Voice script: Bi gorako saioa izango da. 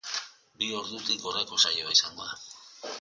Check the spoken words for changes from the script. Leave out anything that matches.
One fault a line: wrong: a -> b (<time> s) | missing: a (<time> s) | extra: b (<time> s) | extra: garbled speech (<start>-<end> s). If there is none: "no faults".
extra: ordutik (0.8 s)